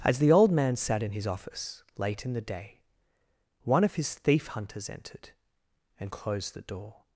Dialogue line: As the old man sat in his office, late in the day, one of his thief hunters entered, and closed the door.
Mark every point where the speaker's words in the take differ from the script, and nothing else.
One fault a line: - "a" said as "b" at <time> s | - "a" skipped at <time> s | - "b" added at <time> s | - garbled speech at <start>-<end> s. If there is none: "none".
none